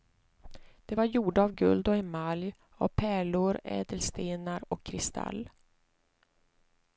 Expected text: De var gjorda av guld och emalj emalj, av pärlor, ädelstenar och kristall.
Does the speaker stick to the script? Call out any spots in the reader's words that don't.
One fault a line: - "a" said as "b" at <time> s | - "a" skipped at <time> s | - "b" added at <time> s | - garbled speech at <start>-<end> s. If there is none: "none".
- "emalj" skipped at 2.5 s